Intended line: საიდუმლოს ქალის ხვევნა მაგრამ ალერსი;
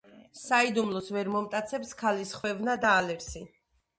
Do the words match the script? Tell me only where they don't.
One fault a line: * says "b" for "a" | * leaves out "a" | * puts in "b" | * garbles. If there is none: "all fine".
* puts in "ვერ მომტაცებს"
* says "და" for "მაგრამ"